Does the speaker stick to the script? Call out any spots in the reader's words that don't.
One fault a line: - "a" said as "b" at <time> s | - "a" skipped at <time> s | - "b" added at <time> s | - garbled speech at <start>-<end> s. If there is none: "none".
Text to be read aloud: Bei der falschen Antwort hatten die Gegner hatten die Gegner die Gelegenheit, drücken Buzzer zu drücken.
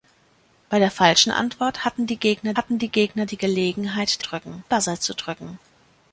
none